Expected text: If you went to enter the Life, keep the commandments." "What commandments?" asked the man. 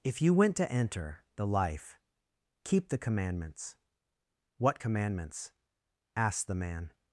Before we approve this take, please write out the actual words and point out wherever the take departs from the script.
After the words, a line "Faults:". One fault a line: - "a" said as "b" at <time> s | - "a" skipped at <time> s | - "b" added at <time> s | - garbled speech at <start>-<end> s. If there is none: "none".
If you went to enter the Life, keep the commandments." "What commandments?" asked the man.
Faults:
none